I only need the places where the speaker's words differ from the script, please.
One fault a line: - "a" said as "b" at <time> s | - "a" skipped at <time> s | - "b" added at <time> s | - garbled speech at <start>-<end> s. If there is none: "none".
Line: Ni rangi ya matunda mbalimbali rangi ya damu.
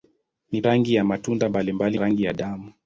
none